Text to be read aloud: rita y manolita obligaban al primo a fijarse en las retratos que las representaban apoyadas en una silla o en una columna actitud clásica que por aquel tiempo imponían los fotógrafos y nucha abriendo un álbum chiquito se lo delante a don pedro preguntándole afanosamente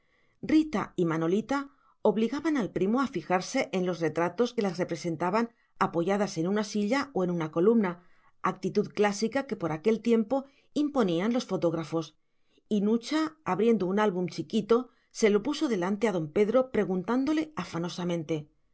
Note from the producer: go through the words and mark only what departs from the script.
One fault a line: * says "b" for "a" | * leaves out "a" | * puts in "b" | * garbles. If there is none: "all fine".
* says "los" for "las"
* puts in "puso"